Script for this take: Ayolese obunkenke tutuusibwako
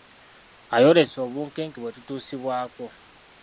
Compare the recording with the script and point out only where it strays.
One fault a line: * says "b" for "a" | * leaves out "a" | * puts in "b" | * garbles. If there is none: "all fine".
* puts in "bwe"